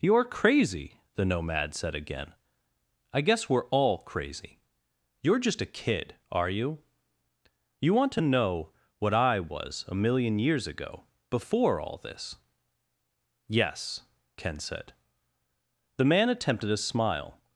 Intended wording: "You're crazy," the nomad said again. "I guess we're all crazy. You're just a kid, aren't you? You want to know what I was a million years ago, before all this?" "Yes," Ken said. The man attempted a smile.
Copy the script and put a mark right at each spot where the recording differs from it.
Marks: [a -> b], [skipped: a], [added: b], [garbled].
"You're crazy," the nomad said again. "I guess we're all crazy. You're just a kid, [aren't -> are] you? You want to know what I was a million years ago, before all this?" "Yes," Ken said. The man attempted a smile.